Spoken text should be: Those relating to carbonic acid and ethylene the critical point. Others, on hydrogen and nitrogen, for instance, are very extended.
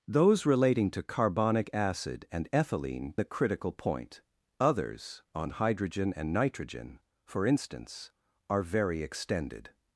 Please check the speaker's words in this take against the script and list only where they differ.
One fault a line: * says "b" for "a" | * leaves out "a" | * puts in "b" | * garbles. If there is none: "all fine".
all fine